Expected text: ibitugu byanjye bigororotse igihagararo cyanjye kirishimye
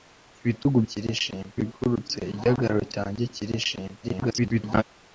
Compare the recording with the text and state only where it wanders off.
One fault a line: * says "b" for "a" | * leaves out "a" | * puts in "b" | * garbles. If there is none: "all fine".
* says "kirishimye" for "byanjye"
* garbles